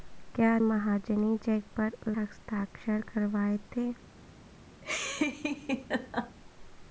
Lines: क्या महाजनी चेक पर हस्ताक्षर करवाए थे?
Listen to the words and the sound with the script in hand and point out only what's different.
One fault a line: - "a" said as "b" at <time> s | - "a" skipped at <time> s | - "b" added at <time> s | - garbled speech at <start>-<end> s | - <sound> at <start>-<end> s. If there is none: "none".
- laugh at 4.8-6.4 s